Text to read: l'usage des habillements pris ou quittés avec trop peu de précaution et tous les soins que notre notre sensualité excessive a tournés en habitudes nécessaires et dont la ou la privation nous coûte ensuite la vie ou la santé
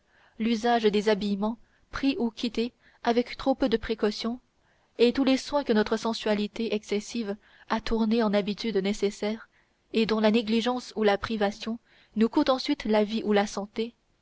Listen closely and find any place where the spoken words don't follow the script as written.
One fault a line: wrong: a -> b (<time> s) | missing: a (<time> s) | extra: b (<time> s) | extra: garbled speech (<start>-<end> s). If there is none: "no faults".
missing: notre (6.0 s)
extra: négligence (10.3 s)